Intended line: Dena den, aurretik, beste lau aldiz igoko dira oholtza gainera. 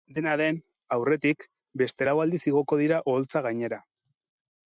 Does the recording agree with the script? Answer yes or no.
yes